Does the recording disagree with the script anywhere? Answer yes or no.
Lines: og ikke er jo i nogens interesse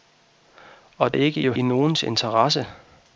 no